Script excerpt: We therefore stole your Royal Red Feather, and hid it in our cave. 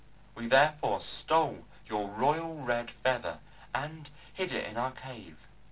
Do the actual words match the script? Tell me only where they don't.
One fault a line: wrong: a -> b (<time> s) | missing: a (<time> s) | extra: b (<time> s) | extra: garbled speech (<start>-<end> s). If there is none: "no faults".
no faults